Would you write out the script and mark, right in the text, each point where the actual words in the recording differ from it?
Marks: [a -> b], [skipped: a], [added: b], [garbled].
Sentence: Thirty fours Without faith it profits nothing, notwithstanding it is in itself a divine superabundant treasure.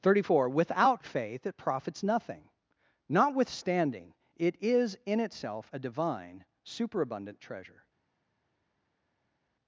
Thirty [fours -> four] Without faith it profits nothing, notwithstanding it is in itself a divine superabundant treasure.